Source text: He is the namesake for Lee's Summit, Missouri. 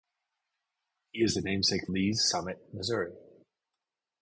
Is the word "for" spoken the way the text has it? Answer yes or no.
no